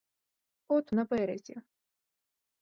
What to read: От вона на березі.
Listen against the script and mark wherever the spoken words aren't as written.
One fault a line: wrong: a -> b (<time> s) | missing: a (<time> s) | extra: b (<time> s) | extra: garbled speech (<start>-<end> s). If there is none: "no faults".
missing: вона (0.9 s)